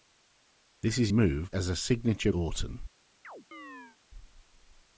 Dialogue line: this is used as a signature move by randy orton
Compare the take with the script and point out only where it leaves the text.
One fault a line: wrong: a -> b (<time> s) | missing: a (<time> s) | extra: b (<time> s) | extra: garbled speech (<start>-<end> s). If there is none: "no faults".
wrong: used -> move (1.1 s)
missing: move by randy (2.3 s)